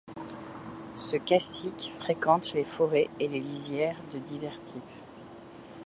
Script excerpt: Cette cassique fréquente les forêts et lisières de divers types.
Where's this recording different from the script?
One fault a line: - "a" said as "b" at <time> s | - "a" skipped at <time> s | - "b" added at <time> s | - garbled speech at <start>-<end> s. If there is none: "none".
- "Cette" said as "Ce" at 0.9 s
- "les" added at 3.3 s